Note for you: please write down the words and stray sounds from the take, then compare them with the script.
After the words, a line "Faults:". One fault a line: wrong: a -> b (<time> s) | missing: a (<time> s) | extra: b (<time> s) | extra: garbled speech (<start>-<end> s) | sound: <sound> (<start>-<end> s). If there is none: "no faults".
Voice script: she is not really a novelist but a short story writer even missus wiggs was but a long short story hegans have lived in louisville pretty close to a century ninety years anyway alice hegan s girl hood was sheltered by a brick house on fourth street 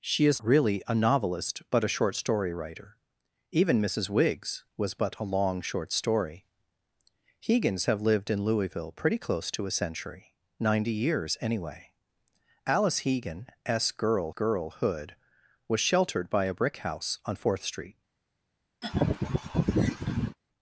she is really a novelist but a short story writer even missus wiggs was but a long short story hegans have lived in louisville pretty close to a century ninety years anyway alice hegan s girl girl hood was sheltered by a brick house on fourth street
Faults:
missing: not (0.4 s)
extra: girl (14.3 s)
sound: laugh (18.8-20.4 s)